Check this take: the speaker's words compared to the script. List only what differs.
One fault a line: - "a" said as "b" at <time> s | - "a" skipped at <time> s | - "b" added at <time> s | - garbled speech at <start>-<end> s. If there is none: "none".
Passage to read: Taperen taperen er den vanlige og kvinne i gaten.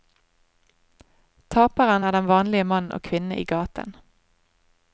- "taperen" skipped at 2.0 s
- "mann" added at 2.6 s